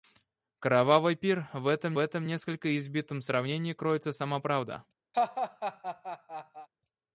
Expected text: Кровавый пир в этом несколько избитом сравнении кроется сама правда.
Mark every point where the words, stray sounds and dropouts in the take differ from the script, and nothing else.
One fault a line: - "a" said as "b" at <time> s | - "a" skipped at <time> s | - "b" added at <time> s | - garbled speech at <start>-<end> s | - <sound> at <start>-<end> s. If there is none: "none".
- "этом" added at 2.0 s
- laugh at 5.1-6.7 s